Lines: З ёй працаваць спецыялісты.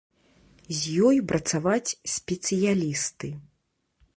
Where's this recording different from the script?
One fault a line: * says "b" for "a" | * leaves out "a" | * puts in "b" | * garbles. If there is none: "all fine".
all fine